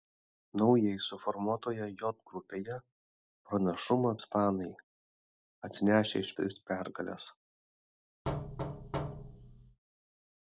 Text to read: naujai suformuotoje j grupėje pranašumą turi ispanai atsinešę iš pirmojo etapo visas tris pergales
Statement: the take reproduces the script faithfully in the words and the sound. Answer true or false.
false